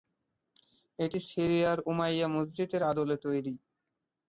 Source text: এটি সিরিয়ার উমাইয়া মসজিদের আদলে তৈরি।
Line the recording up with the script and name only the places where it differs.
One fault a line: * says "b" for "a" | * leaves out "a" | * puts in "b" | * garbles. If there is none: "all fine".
all fine